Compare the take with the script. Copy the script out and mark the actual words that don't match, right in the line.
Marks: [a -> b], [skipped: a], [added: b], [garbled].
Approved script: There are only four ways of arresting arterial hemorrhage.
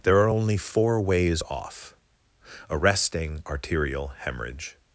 There are only four ways [of -> off] arresting arterial hemorrhage.